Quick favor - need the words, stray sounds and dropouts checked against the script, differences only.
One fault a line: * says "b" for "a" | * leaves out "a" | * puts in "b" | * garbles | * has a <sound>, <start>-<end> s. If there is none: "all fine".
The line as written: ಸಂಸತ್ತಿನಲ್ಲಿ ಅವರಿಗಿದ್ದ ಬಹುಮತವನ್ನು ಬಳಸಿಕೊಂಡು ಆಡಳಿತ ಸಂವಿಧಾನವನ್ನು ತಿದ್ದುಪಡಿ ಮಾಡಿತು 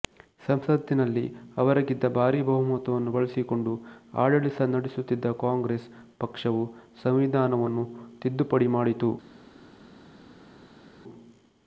* puts in "ಭಾರೀ"
* puts in "ನಡೆಸುತ್ತಿದ್ದ ಕಾಂಗ್ರೆಸ್ ಪಕ್ಷವು"